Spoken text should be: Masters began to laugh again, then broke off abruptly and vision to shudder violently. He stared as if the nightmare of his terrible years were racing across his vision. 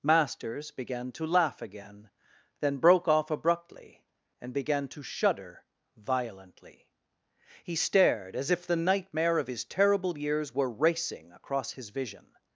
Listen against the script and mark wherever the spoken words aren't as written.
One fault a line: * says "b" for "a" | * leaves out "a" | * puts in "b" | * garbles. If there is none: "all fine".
* says "began" for "vision"